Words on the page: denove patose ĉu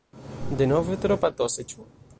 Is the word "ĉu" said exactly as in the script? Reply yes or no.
yes